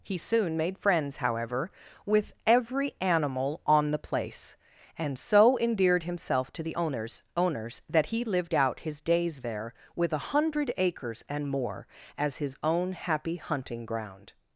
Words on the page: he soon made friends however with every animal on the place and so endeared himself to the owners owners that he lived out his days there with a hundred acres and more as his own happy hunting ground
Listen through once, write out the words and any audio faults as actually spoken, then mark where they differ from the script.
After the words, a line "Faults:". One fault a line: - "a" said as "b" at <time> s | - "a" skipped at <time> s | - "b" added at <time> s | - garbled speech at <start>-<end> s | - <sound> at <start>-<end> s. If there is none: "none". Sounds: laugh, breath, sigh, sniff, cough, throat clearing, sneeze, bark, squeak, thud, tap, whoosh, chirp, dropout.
he soon made friends however with every animal on the place and so endeared himself to the owners owners that he lived out his days there with a hundred acres and more as his own happy hunting ground
Faults:
none